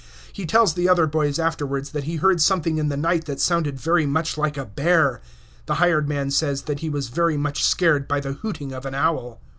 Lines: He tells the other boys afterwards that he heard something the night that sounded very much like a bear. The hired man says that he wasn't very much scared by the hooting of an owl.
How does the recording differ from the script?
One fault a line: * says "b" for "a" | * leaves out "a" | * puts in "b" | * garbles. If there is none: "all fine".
* puts in "in"
* says "was" for "wasn't"